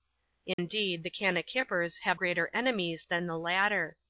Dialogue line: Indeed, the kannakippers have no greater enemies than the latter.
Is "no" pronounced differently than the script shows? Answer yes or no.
yes